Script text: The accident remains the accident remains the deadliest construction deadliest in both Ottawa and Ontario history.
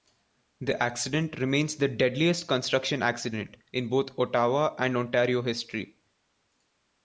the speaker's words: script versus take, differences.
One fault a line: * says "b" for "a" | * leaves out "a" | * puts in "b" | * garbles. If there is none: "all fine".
* leaves out "accident remains the"
* says "accident" for "deadliest"